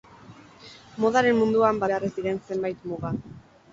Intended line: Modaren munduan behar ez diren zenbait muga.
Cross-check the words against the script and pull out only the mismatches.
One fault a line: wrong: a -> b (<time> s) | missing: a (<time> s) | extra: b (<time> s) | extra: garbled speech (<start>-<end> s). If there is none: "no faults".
no faults